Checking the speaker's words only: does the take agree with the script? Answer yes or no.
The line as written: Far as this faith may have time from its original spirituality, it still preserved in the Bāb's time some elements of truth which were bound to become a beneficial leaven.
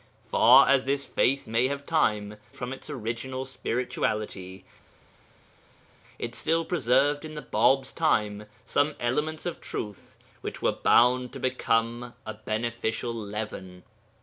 yes